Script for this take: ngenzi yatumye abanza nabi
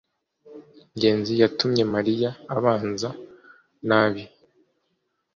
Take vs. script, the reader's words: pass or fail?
fail